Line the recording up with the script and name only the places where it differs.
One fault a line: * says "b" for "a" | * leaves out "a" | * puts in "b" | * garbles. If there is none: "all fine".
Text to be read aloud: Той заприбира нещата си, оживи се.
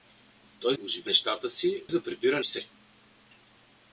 * says "оживи" for "заприбира"
* says "заприбира" for "оживи"